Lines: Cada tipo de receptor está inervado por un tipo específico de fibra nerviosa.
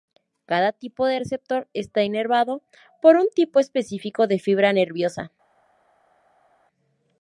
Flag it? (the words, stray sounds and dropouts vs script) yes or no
no